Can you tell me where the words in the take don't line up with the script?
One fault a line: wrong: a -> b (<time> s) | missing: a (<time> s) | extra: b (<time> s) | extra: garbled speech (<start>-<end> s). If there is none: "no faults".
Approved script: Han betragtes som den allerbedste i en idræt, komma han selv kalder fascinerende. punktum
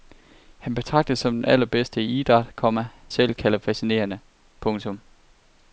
missing: han (2.9 s)